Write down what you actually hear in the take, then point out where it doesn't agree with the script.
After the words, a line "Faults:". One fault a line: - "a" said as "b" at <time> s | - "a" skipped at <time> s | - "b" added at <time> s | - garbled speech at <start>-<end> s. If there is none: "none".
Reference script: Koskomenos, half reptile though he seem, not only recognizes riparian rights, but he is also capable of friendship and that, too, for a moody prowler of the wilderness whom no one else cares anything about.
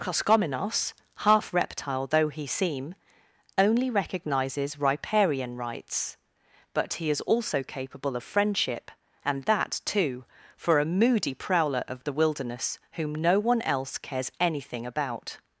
Koskomenos, half reptile though he seem, only recognizes riparian rights, but he is also capable of friendship and that, too, for a moody prowler of the wilderness whom no one else cares anything about.
Faults:
- "not" skipped at 3.0 s